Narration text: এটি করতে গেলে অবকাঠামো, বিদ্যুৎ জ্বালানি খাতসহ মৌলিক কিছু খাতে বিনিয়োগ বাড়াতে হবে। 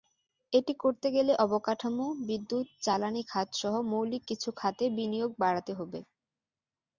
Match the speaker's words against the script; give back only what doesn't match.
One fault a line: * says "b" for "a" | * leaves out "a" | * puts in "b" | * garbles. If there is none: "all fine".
all fine